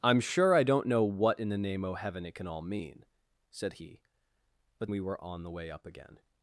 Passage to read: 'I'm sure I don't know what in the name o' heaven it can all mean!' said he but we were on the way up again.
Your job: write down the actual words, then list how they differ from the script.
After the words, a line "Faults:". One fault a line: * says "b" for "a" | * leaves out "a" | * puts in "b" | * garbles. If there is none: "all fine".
'I'm sure I don't know what in the name o' heaven it can all mean!' said he but we were on the way up again.
Faults:
all fine